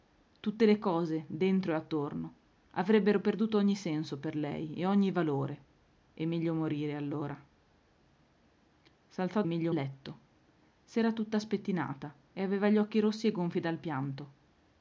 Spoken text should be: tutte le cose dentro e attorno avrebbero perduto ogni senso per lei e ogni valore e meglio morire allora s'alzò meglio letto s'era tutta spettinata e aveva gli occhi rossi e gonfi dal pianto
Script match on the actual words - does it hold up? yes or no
yes